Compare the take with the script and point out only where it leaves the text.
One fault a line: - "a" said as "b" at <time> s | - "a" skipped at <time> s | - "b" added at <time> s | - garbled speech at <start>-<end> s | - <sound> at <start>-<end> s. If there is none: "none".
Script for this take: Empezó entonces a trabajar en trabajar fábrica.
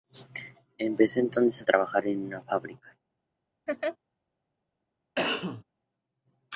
- "trabajar" said as "una" at 2.3 s
- laugh at 3.7-4.0 s
- cough at 5.1-5.6 s